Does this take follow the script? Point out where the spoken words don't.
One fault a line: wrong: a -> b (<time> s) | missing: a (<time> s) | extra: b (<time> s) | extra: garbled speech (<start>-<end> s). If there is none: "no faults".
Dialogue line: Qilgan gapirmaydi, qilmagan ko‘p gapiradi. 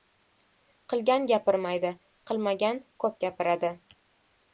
no faults